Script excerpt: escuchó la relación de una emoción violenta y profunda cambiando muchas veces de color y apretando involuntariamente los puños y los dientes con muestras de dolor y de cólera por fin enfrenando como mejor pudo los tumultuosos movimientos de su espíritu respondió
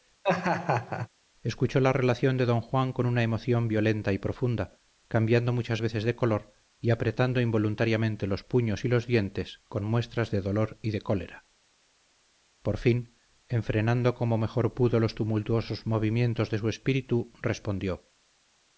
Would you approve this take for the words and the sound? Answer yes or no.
no